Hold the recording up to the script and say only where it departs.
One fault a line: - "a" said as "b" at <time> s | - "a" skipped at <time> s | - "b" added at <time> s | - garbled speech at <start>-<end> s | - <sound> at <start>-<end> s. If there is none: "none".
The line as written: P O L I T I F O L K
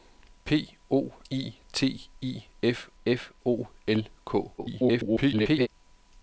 - "L" skipped at 1.1 s
- "F" added at 3.0 s
- garbled speech at 4.6-5.7 s